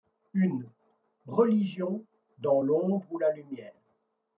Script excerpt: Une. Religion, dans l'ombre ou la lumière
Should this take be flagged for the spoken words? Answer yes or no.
no